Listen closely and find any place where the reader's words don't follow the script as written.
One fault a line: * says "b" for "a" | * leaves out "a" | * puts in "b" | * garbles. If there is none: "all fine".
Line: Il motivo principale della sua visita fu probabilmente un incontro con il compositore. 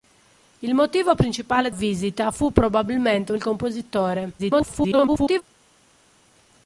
* leaves out "della sua"
* leaves out "incontro con"
* garbles